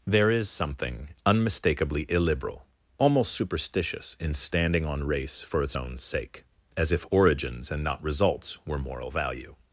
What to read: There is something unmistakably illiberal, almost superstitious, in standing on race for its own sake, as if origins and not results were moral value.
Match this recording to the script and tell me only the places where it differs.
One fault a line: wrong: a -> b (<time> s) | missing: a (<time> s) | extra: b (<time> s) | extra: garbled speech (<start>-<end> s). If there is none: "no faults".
no faults